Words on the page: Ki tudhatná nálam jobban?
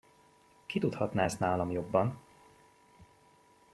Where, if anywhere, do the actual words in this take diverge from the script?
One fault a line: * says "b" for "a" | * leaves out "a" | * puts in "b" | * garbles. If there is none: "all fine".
* puts in "ezt"